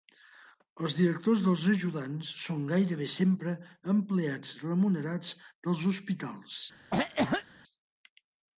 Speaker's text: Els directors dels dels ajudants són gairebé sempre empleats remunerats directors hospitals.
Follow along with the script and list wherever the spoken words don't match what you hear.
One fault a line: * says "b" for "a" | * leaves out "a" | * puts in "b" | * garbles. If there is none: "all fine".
* leaves out "dels"
* says "dels" for "directors"